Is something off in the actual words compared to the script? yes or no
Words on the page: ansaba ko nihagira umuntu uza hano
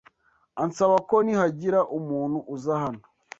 no